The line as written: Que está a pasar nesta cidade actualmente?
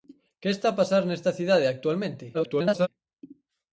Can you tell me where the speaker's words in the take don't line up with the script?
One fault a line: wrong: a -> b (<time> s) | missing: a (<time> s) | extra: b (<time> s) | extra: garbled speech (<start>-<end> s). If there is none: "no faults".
extra: garbled speech (2.3-2.9 s)